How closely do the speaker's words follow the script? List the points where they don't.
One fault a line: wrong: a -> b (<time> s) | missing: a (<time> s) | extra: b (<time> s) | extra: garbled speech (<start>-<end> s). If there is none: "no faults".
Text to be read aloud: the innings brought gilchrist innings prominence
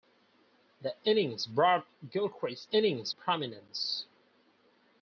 no faults